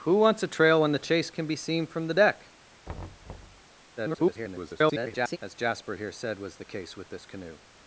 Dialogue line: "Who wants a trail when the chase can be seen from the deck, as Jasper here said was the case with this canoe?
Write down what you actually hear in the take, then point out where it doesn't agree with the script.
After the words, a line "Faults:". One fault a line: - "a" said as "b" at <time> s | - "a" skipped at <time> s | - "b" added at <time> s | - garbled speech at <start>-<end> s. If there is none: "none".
"Who wants a trail when the chase can be seen from the deck, [garbled] as Jasper here said was the case with this canoe?
Faults:
- garbled speech at 4.0-5.4 s